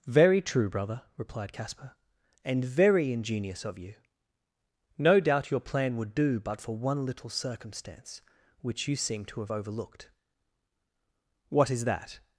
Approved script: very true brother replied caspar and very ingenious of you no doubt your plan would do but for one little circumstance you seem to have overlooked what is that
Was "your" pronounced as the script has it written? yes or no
yes